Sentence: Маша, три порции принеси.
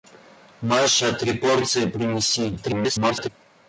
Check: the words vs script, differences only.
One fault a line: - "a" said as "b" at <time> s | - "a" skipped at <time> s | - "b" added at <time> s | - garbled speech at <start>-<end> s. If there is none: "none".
- garbled speech at 2.6-3.3 s